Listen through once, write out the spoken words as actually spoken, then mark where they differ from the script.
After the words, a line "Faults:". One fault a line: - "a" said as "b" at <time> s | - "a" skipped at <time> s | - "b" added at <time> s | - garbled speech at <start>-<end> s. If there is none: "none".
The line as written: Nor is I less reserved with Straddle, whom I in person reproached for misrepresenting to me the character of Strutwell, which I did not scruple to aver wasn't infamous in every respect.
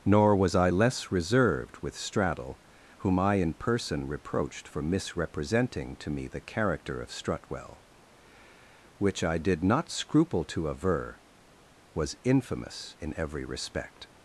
Nor was I less reserved with Straddle, whom I in person reproached for misrepresenting to me the character of Strutwell, which I did not scruple to aver was infamous in every respect.
Faults:
- "is" said as "was" at 0.3 s
- "wasn't" said as "was" at 11.9 s